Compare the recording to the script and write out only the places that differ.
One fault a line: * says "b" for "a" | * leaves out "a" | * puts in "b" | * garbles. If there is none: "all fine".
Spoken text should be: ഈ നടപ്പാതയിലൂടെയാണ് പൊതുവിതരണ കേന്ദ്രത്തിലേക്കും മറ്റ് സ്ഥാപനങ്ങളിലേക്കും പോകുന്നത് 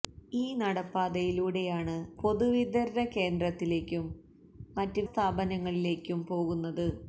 all fine